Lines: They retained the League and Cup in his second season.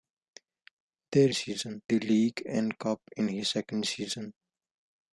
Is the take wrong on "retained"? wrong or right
wrong